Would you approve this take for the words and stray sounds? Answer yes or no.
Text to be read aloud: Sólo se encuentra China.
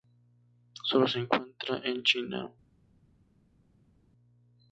no